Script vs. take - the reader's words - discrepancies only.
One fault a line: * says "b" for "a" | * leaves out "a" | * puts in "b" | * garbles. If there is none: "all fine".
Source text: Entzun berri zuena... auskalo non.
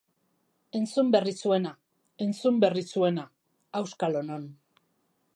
* puts in "entzun berri zuena"